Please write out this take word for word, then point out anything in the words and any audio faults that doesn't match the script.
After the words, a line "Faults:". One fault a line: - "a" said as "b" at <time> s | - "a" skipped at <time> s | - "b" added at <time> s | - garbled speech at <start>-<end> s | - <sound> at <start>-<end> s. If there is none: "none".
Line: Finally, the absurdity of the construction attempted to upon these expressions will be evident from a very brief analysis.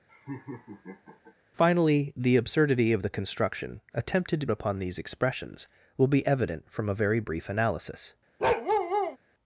Finally, the absurdity of the construction attempted to upon these expressions will be evident from a very brief analysis.
Faults:
- laugh at 0.1-1.3 s
- bark at 8.4-9.2 s